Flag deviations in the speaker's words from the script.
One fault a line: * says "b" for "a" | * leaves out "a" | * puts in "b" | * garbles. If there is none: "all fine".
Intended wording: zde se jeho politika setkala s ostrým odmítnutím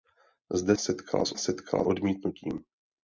* leaves out "se jeho politika"
* says "setkala" for "ostrým"